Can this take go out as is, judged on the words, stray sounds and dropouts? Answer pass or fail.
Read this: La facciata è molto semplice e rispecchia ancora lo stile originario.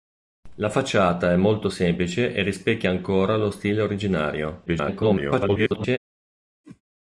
fail